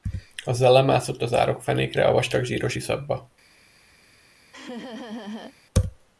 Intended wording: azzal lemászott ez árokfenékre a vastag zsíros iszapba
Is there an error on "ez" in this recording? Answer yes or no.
yes